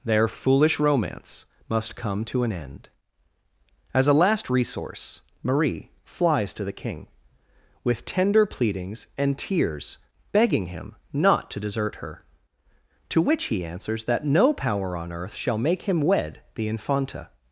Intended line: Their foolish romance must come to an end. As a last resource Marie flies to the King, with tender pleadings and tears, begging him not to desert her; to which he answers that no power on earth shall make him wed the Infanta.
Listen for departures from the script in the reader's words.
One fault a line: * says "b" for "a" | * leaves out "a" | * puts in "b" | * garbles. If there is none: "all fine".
all fine